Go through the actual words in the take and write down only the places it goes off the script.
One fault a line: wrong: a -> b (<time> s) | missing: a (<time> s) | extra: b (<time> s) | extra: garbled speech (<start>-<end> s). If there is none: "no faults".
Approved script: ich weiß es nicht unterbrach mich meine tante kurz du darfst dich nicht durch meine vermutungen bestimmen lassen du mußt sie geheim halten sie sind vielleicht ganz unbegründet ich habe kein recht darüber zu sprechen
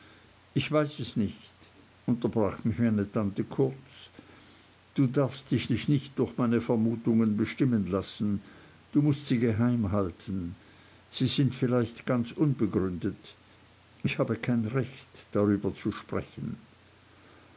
extra: dich (5.7 s)